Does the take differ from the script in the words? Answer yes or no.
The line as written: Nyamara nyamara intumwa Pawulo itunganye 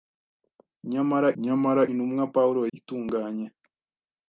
no